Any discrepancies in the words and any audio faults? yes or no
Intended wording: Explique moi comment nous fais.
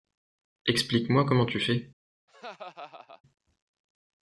yes